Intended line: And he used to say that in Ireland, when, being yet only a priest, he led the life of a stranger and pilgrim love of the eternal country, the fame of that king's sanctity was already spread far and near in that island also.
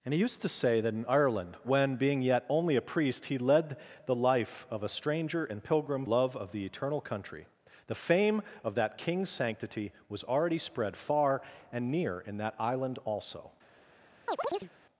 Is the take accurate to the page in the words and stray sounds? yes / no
no